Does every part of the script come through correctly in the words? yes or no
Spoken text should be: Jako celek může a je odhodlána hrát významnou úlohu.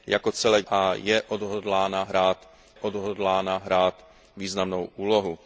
no